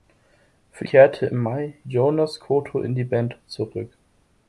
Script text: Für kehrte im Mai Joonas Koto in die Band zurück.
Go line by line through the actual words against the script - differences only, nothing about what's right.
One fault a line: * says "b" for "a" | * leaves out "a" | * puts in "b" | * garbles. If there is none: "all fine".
all fine